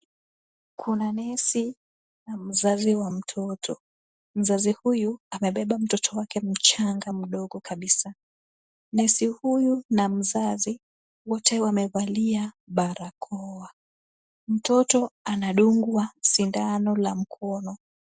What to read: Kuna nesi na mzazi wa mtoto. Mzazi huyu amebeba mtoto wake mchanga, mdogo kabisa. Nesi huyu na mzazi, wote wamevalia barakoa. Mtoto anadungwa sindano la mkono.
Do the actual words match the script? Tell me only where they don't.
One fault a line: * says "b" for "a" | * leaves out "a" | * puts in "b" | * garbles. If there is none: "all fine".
all fine